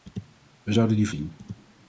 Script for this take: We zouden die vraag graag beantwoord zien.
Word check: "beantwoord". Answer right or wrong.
wrong